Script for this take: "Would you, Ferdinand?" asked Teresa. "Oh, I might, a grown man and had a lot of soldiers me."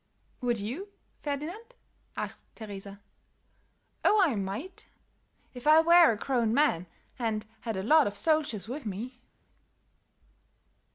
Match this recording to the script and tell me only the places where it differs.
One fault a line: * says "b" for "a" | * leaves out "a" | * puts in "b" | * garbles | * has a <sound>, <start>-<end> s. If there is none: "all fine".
* puts in "if I were"
* puts in "with"